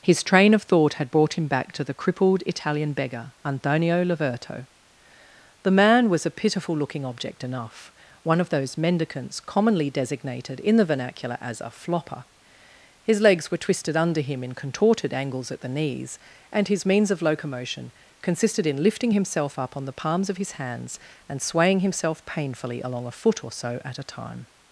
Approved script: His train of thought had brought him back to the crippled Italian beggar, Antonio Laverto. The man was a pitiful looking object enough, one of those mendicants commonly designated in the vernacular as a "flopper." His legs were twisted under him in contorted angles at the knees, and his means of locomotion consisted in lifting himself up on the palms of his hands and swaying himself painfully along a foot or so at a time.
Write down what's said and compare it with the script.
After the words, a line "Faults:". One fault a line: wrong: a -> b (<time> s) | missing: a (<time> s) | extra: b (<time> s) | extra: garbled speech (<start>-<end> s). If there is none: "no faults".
His train of thought had brought him back to the crippled Italian beggar, Antonio Laverto. The man was a pitiful looking object enough, one of those mendicants commonly designated in the vernacular as a "flopper." His legs were twisted under him in contorted angles at the knees, and his means of locomotion consisted in lifting himself up on the palms of his hands and swaying himself painfully along a foot or so at a time.
Faults:
no faults